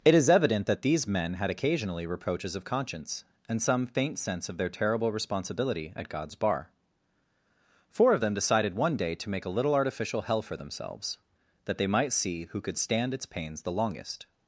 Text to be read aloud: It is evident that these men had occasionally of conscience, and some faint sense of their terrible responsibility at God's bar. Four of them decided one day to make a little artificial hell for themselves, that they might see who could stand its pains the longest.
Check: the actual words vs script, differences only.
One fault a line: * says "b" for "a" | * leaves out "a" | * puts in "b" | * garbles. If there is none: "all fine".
* puts in "reproaches"